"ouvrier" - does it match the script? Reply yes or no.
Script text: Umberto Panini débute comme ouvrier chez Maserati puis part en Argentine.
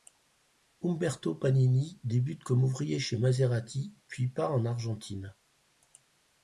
yes